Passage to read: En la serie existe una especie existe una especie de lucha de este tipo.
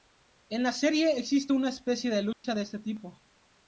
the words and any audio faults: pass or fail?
fail